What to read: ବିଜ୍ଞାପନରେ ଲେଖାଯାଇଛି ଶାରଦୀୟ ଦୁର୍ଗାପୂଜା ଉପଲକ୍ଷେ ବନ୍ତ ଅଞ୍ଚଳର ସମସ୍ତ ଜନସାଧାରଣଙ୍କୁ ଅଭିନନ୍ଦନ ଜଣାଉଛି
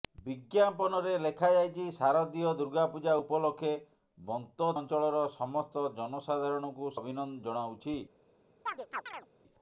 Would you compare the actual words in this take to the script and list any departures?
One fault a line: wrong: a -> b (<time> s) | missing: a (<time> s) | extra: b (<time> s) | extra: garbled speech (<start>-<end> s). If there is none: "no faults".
no faults